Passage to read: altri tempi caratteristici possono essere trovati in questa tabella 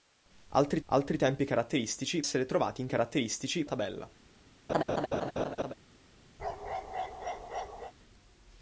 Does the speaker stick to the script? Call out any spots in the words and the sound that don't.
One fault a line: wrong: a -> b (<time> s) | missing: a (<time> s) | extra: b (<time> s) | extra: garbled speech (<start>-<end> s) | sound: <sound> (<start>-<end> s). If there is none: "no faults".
extra: altri (0.9 s)
missing: possono (2.2 s)
wrong: questa -> caratteristici (2.9 s)
sound: laugh (4.7-5.7 s)
sound: bark (6.4-7.9 s)